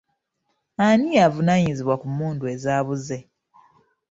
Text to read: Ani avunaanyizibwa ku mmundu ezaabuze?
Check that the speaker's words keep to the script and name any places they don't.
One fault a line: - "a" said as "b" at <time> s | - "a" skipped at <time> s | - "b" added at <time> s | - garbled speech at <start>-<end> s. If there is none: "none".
none